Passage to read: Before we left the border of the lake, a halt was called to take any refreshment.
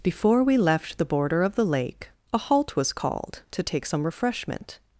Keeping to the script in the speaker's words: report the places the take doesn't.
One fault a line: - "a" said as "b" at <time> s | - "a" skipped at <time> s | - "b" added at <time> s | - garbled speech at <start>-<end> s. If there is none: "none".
- "any" said as "some" at 3.9 s